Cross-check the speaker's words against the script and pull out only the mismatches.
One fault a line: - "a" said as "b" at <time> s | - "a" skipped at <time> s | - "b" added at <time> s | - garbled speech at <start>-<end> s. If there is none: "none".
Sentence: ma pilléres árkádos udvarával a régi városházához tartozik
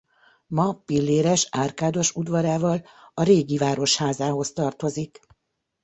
none